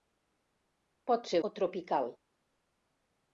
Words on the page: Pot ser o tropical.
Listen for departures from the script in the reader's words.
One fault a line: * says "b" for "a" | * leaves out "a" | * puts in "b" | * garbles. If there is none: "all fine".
all fine